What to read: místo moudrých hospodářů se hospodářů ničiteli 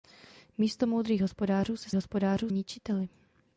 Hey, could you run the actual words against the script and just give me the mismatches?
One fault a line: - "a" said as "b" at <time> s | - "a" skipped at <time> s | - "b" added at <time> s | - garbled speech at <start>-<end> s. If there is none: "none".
none